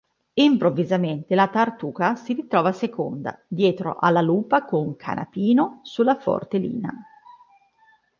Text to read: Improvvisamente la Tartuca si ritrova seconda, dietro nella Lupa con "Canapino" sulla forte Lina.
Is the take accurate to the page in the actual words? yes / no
no